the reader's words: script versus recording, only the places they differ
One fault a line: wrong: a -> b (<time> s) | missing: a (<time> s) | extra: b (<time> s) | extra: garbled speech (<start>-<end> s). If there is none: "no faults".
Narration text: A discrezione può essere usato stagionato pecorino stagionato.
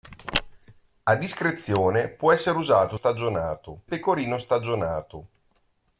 no faults